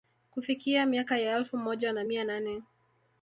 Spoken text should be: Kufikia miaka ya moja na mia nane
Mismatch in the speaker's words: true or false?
true